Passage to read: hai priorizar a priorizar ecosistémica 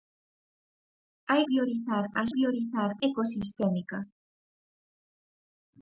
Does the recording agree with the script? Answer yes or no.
yes